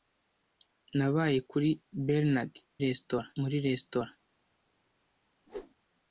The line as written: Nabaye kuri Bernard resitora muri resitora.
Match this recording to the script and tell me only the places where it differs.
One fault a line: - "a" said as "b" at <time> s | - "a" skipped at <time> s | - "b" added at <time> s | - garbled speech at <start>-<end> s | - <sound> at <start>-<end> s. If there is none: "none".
- whoosh at 5.5-5.7 s